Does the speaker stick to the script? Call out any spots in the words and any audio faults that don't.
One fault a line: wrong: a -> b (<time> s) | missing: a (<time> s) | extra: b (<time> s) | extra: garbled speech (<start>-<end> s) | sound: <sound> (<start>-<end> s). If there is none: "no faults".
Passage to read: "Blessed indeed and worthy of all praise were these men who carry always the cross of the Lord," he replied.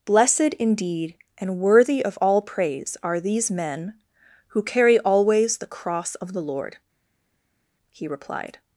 wrong: were -> are (3.0 s)